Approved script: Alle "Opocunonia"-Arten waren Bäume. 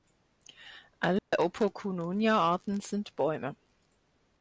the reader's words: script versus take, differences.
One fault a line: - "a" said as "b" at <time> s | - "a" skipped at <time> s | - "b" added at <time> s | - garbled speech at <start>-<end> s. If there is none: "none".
- "waren" said as "sind" at 2.8 s